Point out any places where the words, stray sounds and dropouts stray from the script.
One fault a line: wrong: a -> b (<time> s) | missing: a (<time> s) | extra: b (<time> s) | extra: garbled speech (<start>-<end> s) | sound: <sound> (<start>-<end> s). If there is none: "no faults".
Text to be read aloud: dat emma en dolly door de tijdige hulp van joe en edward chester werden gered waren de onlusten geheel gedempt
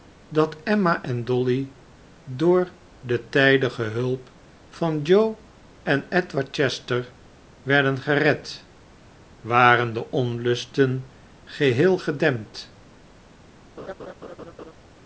sound: laugh (13.8-14.7 s)